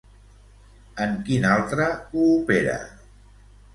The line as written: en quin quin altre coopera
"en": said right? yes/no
yes